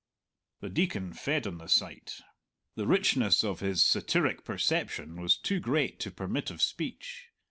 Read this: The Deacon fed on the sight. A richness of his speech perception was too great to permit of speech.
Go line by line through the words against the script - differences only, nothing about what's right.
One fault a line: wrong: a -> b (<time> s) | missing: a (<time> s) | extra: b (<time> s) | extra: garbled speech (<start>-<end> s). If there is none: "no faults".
wrong: A -> The (2.7 s)
wrong: speech -> satiric (3.9 s)